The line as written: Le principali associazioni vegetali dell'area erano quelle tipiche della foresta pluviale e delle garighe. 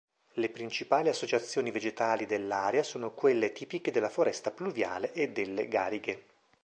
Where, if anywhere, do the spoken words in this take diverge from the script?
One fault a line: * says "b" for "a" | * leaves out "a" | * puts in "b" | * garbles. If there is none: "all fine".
* says "sono" for "erano"